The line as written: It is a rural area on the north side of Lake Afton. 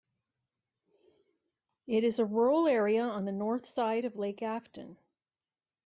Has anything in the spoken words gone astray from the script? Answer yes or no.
no